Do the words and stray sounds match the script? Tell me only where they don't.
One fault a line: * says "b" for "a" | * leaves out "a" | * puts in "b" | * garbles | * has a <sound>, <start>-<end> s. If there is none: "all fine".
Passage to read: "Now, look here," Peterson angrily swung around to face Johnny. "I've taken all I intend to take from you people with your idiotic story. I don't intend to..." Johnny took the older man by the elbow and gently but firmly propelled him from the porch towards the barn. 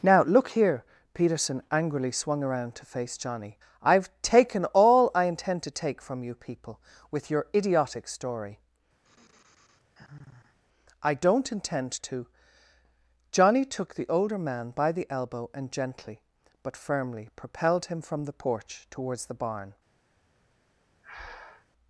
* has a sigh, 9.0-10.6 s
* has a breath, 21.0-21.7 s